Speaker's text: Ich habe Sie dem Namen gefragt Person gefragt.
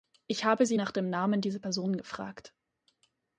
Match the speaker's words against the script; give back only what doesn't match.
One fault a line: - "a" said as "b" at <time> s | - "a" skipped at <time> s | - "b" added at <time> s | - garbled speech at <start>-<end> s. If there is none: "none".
- "nach" added at 0.8 s
- "gefragt" said as "dieser" at 1.4 s